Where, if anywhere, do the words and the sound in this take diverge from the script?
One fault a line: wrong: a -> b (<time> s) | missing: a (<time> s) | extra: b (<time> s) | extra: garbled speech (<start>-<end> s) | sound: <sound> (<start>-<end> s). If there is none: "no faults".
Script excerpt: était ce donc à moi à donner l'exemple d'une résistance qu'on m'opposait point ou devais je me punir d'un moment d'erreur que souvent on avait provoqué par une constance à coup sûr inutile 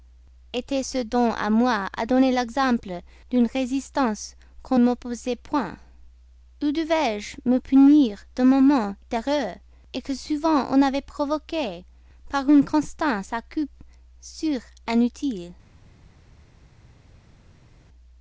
no faults